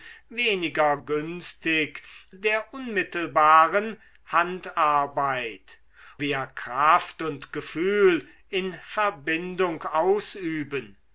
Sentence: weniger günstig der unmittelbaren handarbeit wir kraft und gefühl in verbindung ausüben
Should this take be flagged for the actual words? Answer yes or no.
no